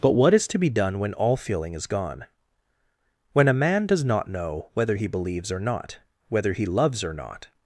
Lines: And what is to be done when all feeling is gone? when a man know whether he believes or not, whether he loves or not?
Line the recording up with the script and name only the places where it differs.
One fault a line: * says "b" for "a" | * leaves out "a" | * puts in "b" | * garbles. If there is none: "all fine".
* says "But" for "And"
* puts in "does not"